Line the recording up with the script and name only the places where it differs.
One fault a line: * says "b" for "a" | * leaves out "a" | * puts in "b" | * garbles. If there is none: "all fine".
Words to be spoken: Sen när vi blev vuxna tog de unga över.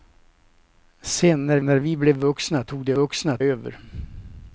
* puts in "när"
* says "vuxna" for "unga"